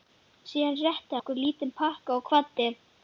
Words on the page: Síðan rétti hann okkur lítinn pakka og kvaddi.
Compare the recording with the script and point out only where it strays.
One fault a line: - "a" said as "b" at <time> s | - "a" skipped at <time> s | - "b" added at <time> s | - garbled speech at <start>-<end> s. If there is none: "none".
- "hann" skipped at 1.2 s